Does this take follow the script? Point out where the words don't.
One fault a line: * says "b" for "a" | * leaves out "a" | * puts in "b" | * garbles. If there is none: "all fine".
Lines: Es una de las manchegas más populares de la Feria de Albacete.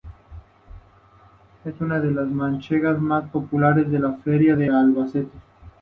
all fine